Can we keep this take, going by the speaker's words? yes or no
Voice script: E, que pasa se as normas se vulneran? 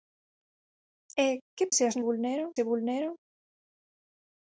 no